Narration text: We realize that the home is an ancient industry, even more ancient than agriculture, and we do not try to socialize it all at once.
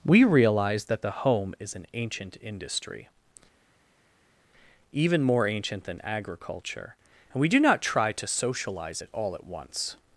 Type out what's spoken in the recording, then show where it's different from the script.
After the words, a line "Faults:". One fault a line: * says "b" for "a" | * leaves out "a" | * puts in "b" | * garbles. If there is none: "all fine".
We realize that the home is an ancient industry, even more ancient than agriculture, and we do not try to socialize it all at once.
Faults:
all fine